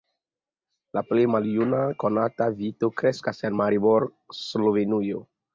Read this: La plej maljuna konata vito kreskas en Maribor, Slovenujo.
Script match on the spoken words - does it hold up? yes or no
yes